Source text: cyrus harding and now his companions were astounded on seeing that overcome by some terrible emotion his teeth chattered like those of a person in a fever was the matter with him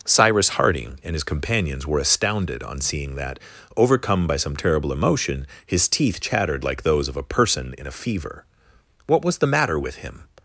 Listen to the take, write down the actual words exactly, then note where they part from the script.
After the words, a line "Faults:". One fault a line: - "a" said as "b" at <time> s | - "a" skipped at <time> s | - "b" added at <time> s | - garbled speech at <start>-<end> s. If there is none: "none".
cyrus harding and his companions were astounded on seeing that overcome by some terrible emotion his teeth chattered like those of a person in a fever what was the matter with him
Faults:
- "now" skipped at 1.1 s
- "what" added at 9.1 s